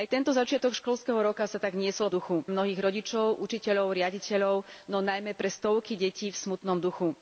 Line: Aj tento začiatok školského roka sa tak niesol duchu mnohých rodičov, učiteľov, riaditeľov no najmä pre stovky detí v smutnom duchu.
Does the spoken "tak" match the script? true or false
true